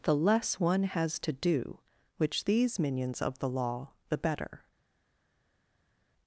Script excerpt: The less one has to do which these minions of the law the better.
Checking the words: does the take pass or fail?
pass